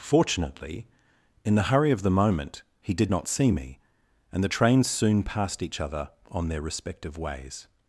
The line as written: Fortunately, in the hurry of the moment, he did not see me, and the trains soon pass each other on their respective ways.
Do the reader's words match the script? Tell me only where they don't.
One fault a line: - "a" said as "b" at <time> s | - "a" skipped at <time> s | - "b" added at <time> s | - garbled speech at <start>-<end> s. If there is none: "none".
- "pass" said as "passed" at 5.2 s